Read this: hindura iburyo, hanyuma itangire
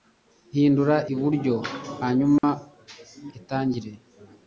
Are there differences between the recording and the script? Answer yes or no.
no